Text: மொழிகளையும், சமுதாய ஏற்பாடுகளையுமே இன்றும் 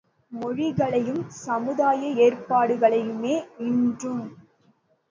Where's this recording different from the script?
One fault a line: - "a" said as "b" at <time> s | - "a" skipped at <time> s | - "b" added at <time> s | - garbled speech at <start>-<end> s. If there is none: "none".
none